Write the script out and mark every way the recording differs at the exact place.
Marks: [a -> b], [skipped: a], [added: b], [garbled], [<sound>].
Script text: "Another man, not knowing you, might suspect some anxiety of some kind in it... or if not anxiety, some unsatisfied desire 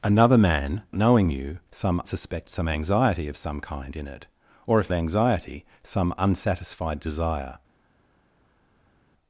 "Another man, [skipped: not] knowing you, [might -> some] suspect some anxiety of some kind in it... or if [skipped: not] anxiety, some unsatisfied desire